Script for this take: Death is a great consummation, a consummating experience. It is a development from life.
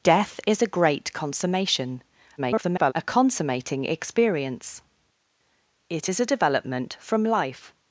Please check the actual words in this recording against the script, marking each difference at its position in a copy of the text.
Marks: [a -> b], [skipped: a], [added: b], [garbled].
Death is a great consummation, [garbled] a consummating experience. It is a development from life.